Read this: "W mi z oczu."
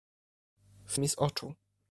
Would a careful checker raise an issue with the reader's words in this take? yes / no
no